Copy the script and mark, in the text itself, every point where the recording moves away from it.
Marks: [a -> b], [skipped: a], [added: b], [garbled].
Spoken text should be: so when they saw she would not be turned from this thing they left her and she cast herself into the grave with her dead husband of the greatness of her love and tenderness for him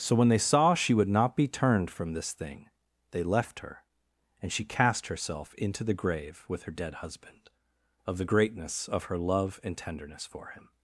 so when they saw she would not be turned from this thing they left her and she cast herself into the grave with her dead husband of the greatness of her love and tenderness for him